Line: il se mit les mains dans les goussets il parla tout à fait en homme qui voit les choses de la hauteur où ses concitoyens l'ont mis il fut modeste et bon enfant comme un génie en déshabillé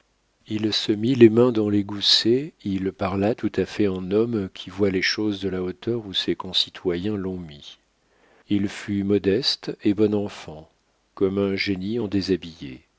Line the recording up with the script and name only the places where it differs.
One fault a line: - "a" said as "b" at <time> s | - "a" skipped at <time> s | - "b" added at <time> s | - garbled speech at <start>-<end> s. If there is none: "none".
none